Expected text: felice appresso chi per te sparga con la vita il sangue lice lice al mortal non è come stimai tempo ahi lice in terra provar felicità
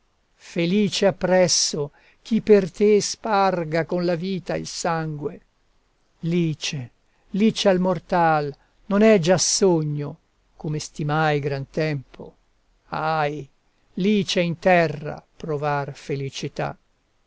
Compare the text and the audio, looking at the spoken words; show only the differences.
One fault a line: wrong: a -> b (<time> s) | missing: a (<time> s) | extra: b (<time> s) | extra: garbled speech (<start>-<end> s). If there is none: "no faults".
extra: già sogno (9.2 s)
extra: gran (11.4 s)